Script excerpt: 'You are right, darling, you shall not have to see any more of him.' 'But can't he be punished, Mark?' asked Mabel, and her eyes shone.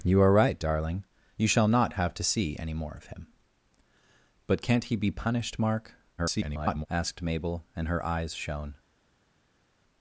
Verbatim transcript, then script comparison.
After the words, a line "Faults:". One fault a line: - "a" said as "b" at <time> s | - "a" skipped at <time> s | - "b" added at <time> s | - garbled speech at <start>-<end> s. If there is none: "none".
'You are right, darling, you shall not have to see any more of him.' 'But can't he be punished, Mark?' [garbled] asked Mabel, and her eyes shone.
Faults:
- garbled speech at 6.2-6.9 s